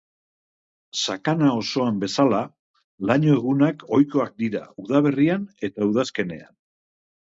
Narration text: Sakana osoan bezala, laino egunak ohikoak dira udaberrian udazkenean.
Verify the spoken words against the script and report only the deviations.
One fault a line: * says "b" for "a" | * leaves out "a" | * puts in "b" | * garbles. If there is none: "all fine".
* puts in "eta"